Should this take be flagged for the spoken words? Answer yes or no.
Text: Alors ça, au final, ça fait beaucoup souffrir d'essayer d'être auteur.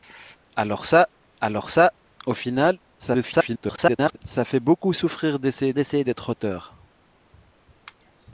yes